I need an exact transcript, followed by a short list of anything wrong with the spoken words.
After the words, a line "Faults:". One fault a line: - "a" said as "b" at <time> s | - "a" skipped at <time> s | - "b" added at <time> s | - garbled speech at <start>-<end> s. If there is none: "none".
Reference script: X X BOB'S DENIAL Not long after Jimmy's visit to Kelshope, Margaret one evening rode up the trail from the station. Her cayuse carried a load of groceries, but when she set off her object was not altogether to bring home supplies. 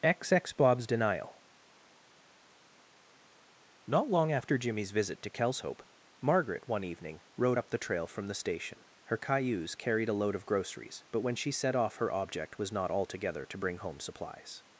X X BOB'S DENIAL Not long after Jimmy's visit to Kelshope, Margaret one evening rode up the trail from the station. Her cayuse carried a load of groceries, but when she set off her object was not altogether to bring home supplies.
Faults:
none